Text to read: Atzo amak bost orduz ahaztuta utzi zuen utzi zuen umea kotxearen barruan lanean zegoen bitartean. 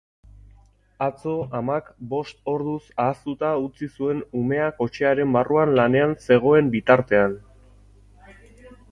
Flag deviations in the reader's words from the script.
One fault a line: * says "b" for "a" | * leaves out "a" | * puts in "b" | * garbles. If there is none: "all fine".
* leaves out "utzi zuen"